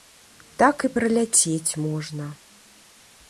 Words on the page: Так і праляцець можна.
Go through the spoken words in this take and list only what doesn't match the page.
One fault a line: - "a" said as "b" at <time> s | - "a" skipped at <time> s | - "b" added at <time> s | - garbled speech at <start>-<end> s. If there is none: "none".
none